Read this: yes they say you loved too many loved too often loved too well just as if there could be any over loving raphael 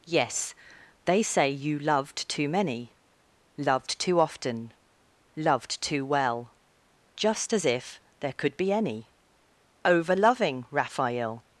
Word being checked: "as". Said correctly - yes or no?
yes